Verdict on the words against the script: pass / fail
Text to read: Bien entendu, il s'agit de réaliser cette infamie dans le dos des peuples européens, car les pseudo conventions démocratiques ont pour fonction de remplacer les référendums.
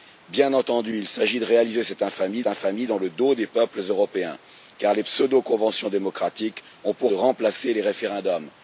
fail